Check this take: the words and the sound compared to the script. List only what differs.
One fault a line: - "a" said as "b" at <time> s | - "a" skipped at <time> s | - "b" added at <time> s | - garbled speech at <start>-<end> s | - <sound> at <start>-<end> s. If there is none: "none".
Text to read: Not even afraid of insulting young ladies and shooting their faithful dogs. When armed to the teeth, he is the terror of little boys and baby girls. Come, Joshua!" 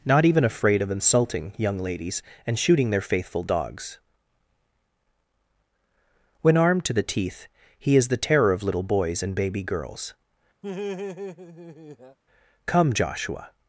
- laugh at 10.6-12.2 s